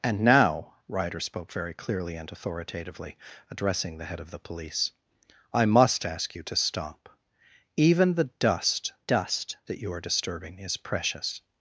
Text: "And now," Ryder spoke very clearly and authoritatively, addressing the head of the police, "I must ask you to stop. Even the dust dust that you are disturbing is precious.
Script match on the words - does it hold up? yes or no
yes